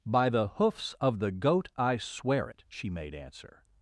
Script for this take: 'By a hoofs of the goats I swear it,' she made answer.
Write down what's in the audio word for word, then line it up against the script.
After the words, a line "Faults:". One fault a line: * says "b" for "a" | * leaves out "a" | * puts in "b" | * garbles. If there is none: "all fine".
'By the hoofs of the goat I swear it,' she made answer.
Faults:
* says "the" for "a"
* says "goat" for "goats"